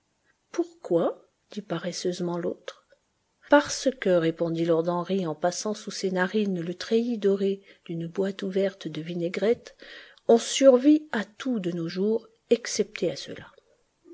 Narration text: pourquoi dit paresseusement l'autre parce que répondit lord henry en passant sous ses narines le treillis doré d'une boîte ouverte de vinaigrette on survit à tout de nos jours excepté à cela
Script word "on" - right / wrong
right